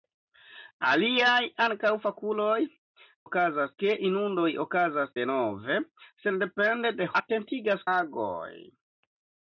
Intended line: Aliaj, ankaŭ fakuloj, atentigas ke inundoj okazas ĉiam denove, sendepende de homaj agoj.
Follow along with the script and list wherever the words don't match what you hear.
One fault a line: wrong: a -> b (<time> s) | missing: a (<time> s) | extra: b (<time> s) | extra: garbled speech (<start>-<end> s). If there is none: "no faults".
wrong: atentigas -> okazas (3.3 s)
missing: ĉiam (5.1 s)
wrong: homaj -> atentigas (7.2 s)